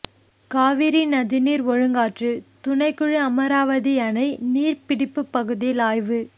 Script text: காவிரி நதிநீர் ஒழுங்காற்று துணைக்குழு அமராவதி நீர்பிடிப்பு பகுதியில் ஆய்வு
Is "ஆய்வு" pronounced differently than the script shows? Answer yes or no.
no